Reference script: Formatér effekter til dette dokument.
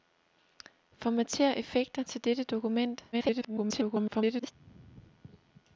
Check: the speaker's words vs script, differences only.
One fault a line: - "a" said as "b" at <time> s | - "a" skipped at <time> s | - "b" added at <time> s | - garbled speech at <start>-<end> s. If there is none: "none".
- garbled speech at 3.1-4.5 s